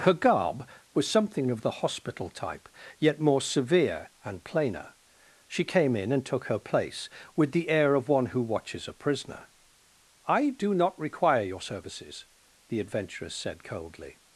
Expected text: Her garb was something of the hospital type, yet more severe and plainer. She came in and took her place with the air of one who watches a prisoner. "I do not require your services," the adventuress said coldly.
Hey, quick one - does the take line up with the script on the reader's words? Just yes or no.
yes